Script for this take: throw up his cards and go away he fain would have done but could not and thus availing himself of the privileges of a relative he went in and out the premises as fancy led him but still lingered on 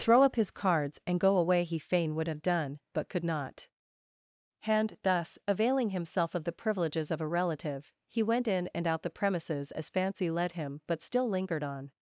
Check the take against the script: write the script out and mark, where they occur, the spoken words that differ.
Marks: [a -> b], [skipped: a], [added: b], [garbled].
throw up his cards and go away he fain would have done but could not and thus availing himself of the privileges of a relative he went in and out the premises as fancy led him but still lingered on